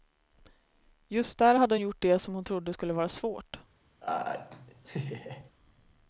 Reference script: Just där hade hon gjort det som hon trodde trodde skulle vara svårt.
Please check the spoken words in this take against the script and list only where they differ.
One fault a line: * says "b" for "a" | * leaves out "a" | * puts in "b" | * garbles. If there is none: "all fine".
* leaves out "trodde"